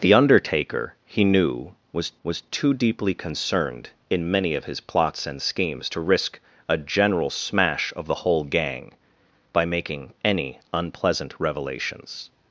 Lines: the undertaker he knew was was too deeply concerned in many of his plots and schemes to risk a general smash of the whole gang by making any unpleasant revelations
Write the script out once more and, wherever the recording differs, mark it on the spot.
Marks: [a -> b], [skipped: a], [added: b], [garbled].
the undertaker he knew was was too deeply concerned in many of his plots and schemes to risk a general smash of the whole gang by making any unpleasant revelations